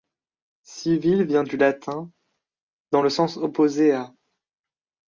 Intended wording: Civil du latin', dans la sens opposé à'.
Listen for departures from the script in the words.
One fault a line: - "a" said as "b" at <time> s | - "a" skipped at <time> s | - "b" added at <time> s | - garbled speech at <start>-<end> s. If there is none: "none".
- "vient" added at 1.2 s
- "la" said as "le" at 3.0 s